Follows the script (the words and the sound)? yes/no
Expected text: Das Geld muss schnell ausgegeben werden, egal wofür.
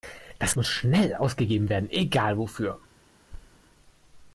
no